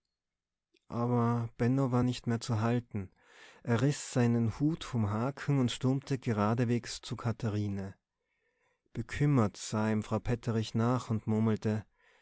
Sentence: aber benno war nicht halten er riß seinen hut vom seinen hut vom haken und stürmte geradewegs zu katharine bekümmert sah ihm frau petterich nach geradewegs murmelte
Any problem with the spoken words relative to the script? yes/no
yes